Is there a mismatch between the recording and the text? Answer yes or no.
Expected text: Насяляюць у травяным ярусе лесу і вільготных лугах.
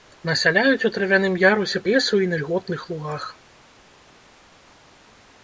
no